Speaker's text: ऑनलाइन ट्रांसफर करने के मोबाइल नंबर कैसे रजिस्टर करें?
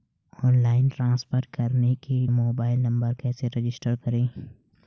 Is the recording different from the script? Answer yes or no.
no